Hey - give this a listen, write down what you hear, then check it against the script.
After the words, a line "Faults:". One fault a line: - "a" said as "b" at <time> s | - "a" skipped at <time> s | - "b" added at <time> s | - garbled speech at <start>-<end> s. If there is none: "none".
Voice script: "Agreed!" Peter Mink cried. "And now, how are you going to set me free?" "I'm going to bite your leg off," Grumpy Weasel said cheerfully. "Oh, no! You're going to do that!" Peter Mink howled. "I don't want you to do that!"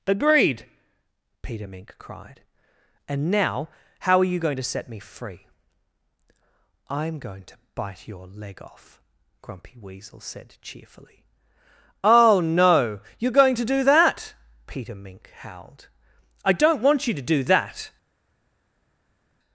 "Agreed!" Peter Mink cried. "And now, how are you going to set me free?" "I'm going to bite your leg off," Grumpy Weasel said cheerfully. "Oh, no! You're going to do that!" Peter Mink howled. "I don't want you to do that!"
Faults:
none